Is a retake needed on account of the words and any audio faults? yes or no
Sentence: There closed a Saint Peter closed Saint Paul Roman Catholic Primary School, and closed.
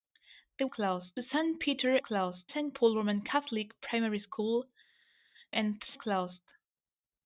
no